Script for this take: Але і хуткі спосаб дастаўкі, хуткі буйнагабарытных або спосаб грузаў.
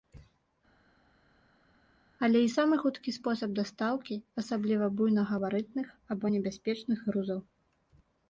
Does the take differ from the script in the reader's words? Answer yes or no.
yes